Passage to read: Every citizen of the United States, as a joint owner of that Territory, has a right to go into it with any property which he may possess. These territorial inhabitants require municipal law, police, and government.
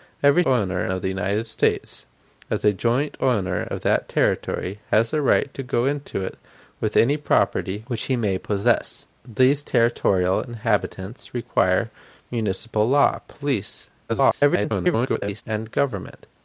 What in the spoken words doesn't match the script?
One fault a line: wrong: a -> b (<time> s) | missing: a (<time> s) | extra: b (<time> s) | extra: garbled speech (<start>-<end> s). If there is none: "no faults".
wrong: citizen -> owner (0.4 s)
extra: garbled speech (14.1-15.4 s)